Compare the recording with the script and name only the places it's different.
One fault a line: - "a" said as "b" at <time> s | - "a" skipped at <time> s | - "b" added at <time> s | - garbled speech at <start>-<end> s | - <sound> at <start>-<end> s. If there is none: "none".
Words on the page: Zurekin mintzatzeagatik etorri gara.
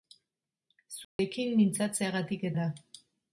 - dropout at 1.0-1.2 s
- "etorri" skipped at 2.5 s